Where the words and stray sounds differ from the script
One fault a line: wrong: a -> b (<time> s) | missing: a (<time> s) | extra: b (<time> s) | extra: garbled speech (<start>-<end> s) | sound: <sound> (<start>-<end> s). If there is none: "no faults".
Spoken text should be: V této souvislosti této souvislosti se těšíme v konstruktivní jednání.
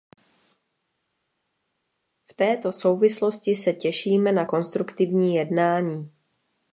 missing: této souvislosti (3.5 s)
wrong: v -> na (4.3 s)